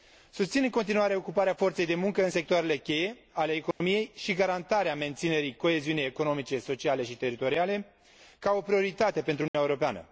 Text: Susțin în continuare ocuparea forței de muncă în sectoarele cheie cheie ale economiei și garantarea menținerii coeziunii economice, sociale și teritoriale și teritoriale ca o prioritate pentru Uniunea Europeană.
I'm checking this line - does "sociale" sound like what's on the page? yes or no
yes